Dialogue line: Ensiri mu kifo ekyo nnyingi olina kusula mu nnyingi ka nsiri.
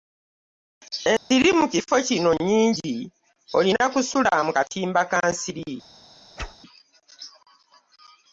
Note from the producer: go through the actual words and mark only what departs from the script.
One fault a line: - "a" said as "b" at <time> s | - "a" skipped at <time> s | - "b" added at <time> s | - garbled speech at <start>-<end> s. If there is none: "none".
- "ekyo" said as "kino" at 2.1 s
- "nnyingi" said as "katimba" at 4.6 s